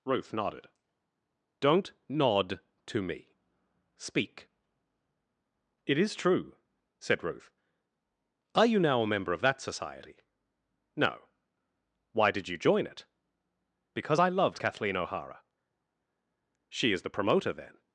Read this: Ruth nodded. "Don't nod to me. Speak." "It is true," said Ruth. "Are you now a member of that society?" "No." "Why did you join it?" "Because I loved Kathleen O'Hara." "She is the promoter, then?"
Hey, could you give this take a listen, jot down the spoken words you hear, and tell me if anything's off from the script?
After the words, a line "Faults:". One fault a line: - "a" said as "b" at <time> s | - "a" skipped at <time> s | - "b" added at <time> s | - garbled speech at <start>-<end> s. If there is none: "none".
Ruth nodded. "Don't nod to me. Speak." "It is true," said Ruth. "Are you now a member of that society?" "No." "Why did you join it?" "Because I loved Kathleen O'Hara." "She is the promoter, then?"
Faults:
none